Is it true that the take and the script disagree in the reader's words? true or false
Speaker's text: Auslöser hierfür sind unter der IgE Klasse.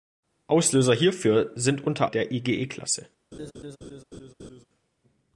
false